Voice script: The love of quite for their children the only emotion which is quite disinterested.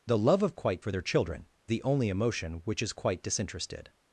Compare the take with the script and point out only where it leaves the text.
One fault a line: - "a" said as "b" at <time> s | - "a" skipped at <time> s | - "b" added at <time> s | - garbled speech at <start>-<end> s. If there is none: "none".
none